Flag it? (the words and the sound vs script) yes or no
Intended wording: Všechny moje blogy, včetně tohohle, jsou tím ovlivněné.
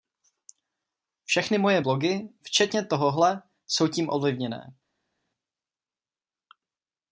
no